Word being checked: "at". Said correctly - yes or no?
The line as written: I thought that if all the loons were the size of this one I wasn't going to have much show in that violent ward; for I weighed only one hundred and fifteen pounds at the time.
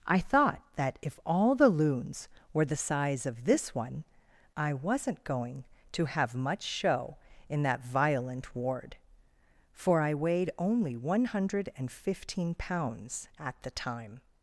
yes